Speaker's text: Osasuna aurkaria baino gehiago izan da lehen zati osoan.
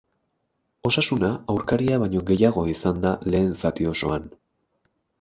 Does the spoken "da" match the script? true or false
true